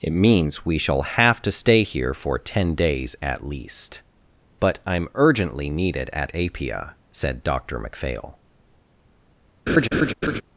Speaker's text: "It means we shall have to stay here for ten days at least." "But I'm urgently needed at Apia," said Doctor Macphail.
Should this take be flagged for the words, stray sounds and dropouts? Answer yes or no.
yes